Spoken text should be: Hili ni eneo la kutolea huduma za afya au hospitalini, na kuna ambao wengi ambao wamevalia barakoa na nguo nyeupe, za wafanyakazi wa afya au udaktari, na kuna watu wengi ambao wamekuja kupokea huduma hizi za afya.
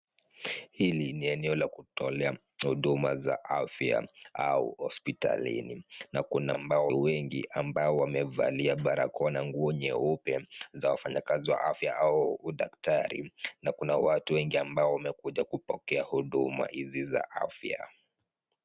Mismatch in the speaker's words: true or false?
false